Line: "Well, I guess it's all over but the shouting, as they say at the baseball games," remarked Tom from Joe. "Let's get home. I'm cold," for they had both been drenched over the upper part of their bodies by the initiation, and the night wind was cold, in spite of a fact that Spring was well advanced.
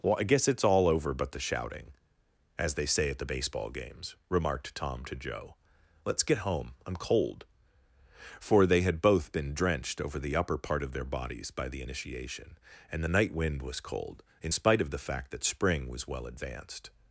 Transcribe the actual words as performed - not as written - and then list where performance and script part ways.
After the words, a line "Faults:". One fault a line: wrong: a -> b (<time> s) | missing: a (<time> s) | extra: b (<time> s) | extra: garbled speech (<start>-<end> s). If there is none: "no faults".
"Well, I guess it's all over but the shouting, as they say at the baseball games," remarked Tom to Joe. "Let's get home. I'm cold," for they had both been drenched over the upper part of their bodies by the initiation, and the night wind was cold, in spite of the fact that Spring was well advanced.
Faults:
wrong: from -> to (5.0 s)
wrong: a -> the (14.9 s)